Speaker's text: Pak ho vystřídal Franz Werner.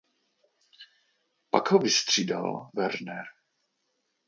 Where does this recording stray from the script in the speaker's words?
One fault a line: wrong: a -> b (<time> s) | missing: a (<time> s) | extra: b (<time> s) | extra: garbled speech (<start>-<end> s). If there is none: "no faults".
missing: Franz (2.7 s)